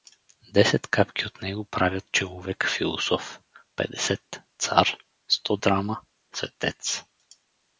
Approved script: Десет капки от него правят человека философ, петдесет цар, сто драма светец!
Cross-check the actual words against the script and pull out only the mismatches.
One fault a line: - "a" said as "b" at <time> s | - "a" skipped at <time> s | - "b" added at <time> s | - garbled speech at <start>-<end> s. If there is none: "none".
none